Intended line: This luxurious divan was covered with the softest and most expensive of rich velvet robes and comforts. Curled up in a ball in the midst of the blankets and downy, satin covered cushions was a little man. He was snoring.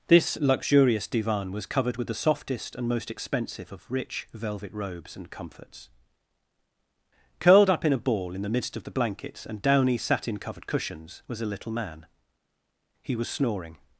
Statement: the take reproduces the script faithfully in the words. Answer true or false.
true